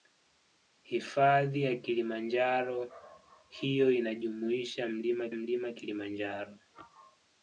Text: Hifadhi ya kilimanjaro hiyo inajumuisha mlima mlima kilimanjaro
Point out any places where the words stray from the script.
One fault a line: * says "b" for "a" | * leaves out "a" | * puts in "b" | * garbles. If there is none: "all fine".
all fine